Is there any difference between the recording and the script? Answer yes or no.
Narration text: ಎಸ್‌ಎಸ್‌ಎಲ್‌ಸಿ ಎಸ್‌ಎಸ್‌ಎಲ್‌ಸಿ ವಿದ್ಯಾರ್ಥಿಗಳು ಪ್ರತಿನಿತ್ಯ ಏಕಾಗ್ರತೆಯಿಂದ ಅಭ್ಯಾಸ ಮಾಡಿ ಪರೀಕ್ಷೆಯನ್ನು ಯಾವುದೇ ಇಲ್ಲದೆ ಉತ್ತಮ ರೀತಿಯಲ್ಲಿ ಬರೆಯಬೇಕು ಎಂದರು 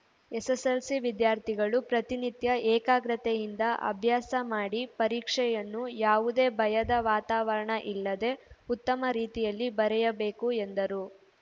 yes